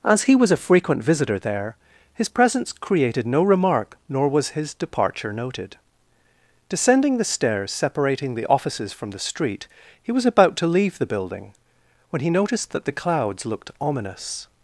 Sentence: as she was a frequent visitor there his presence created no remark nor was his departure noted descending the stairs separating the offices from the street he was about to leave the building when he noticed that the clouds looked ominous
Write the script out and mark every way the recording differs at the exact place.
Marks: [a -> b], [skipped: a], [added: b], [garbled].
as [she -> he] was a frequent visitor there his presence created no remark nor was his departure noted descending the stairs separating the offices from the street he was about to leave the building when he noticed that the clouds looked ominous